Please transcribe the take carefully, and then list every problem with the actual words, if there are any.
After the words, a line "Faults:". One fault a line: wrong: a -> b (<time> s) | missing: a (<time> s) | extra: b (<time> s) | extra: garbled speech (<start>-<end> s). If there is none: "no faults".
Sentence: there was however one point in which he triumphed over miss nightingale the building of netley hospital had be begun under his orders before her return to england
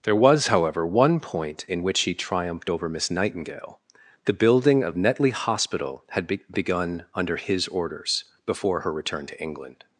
there was however one point in which he triumphed over miss nightingale the building of netley hospital had be begun under his orders before her return to england
Faults:
no faults